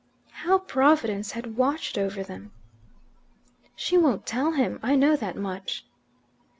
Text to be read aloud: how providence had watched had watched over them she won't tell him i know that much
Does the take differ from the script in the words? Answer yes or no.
yes